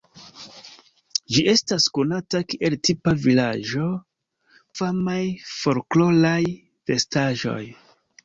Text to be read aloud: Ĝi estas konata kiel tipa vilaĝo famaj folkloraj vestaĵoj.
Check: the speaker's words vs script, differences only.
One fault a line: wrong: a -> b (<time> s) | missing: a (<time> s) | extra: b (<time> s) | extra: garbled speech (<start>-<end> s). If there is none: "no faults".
no faults